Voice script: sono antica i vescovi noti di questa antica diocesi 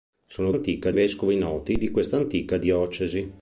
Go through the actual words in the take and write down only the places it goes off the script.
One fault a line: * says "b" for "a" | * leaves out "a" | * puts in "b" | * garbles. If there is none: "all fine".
all fine